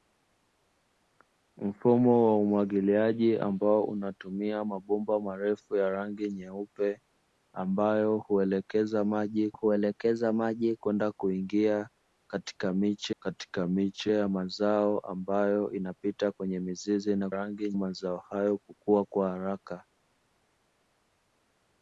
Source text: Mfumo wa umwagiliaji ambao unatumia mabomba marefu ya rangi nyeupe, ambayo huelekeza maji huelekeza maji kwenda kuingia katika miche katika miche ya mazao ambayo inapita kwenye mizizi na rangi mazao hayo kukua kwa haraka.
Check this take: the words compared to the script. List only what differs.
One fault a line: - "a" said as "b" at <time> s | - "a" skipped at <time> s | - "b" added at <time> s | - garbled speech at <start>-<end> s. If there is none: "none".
none